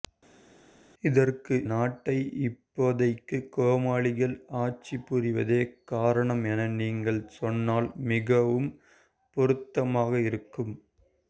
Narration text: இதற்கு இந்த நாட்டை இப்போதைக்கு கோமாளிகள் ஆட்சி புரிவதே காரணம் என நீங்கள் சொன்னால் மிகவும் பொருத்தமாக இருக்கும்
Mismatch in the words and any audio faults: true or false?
true